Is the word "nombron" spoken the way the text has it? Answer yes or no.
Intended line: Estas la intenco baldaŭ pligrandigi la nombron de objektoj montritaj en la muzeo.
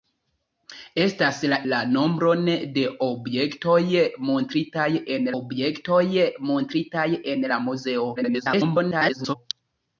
no